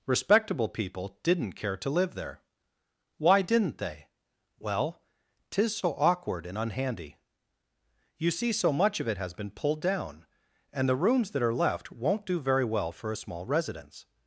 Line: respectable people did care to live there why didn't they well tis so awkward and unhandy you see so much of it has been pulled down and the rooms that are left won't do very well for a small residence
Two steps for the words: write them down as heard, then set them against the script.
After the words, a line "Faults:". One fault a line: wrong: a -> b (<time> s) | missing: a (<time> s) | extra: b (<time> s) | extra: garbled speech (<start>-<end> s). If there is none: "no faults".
respectable people didn't care to live there why didn't they well tis so awkward and unhandy you see so much of it has been pulled down and the rooms that are left won't do very well for a small residence
Faults:
wrong: did -> didn't (1.2 s)